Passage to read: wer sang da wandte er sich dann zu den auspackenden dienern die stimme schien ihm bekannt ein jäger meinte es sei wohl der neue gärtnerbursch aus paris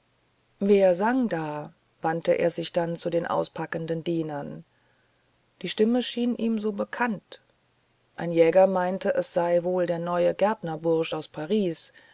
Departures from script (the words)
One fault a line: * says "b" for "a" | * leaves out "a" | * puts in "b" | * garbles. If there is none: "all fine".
* puts in "so"